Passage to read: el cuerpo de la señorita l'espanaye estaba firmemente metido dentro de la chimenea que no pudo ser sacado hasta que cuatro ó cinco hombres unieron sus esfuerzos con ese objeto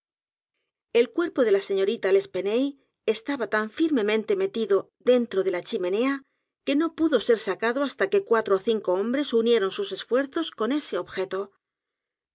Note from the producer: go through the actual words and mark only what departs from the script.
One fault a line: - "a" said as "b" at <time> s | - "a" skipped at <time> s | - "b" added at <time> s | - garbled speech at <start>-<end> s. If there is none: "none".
- "tan" added at 3.5 s